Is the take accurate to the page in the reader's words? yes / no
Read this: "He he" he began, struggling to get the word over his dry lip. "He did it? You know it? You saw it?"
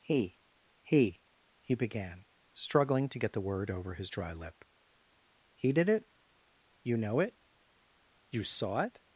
yes